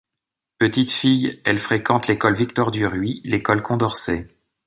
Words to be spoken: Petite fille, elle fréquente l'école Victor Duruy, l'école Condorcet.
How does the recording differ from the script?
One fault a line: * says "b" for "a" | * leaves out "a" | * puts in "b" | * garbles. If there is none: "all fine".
all fine